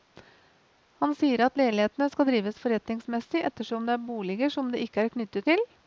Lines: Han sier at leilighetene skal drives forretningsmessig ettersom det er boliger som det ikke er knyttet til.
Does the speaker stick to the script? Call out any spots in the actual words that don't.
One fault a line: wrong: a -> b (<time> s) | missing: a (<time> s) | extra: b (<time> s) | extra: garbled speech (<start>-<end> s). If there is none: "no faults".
no faults